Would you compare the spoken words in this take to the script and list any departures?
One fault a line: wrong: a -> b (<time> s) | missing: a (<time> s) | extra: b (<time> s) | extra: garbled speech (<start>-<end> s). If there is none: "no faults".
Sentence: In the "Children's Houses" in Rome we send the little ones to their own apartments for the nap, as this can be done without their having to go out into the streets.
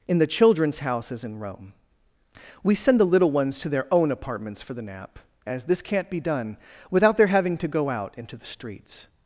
wrong: can -> can't (5.8 s)